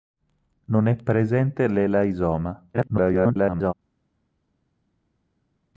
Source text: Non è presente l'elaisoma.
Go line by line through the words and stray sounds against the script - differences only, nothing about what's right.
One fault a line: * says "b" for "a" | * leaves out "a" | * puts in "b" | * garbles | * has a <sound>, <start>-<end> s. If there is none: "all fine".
* garbles